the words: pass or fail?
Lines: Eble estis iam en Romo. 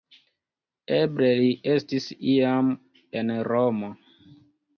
fail